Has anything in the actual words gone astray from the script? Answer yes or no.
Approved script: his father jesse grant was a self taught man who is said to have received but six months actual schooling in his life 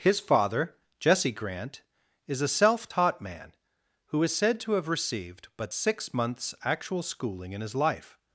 yes